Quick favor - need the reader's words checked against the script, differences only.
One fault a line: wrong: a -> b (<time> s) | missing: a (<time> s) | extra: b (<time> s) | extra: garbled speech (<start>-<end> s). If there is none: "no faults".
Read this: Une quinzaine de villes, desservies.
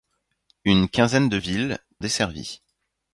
no faults